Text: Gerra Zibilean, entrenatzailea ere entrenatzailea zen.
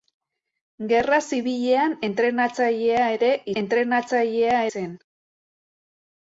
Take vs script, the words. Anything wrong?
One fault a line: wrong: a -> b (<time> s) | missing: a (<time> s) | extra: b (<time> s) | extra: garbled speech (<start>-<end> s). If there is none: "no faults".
no faults